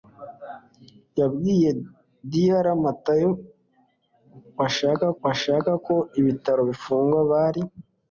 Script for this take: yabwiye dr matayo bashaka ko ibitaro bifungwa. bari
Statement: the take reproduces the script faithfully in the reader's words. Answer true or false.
false